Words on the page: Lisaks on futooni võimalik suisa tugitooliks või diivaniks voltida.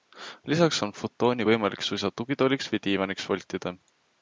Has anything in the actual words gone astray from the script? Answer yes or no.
no